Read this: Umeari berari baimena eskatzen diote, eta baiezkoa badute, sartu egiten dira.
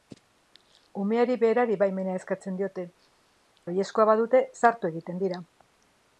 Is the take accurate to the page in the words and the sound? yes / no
no